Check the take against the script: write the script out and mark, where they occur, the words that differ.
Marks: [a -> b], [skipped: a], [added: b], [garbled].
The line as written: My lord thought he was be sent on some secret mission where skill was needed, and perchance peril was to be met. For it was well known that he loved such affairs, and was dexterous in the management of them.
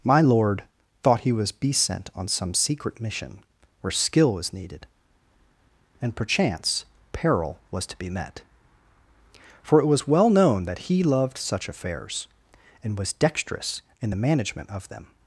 My lord thought he was be sent on some secret mission where skill was needed, and perchance peril was to be met. For it was well known that he loved such affairs, and was dexterous in the management of them.